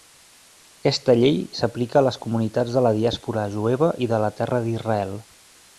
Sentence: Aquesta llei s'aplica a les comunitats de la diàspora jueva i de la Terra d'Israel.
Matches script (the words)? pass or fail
pass